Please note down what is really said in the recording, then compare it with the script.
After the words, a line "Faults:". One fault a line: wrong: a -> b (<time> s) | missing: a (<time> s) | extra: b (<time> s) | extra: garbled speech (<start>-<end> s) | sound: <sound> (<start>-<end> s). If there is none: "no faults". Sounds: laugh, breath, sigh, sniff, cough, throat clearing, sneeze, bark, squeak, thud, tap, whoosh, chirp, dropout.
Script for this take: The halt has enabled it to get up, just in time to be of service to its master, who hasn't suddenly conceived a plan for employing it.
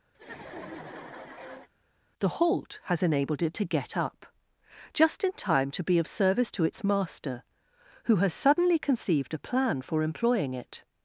The halt has enabled it to get up, just in time to be of service to its master, who has suddenly conceived a plan for employing it.
Faults:
sound: laugh (0.1-1.7 s)
wrong: hasn't -> has (8.2 s)